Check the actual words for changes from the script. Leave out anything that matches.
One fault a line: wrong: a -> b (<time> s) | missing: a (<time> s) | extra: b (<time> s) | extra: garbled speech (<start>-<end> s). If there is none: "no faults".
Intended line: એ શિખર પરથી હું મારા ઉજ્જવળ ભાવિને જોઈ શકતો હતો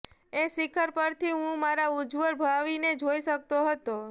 no faults